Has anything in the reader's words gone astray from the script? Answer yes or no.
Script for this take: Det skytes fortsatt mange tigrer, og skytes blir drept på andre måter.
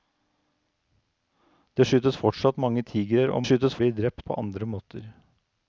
no